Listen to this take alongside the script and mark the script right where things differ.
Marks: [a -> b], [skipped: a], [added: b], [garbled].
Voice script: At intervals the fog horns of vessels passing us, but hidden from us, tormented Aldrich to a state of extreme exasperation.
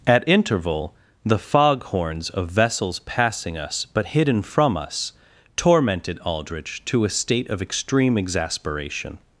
At [intervals -> interval] the fog horns of vessels passing us, but hidden from us, tormented Aldrich to a state of extreme exasperation.